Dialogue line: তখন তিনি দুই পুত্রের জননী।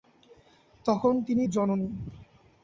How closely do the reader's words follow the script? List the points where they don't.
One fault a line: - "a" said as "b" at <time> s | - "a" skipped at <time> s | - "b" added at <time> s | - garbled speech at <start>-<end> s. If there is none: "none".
- "দুই পুত্রের" skipped at 1.4 s